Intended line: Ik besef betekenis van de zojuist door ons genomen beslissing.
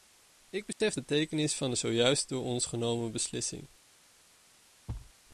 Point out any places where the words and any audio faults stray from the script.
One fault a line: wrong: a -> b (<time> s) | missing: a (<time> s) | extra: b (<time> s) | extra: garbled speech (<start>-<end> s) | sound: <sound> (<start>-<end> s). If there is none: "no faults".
sound: dropout (0.7-0.8 s)
sound: thud (4.9-5.1 s)